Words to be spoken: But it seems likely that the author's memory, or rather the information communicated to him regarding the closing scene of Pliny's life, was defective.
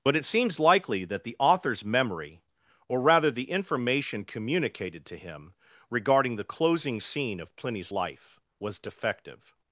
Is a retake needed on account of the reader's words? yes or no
no